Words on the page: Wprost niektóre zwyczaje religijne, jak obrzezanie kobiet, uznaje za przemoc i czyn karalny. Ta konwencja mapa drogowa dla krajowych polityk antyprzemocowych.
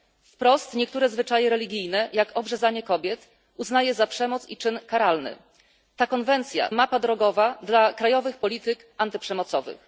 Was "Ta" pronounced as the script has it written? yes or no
yes